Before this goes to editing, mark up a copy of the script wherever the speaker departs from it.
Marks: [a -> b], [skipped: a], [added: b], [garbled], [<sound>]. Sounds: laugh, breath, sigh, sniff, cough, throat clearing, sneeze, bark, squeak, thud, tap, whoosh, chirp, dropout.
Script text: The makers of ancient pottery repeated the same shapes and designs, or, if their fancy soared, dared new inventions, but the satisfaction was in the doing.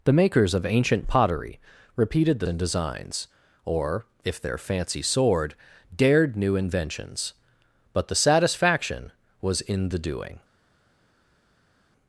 The makers of ancient pottery repeated the [skipped: same shapes] and designs, or, if their fancy soared, dared new inventions, but the satisfaction was in the doing.